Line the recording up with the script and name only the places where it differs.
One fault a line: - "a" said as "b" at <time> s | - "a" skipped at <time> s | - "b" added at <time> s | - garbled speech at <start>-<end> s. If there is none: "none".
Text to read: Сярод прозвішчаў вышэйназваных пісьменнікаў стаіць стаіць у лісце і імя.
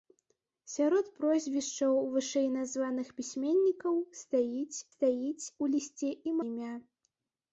none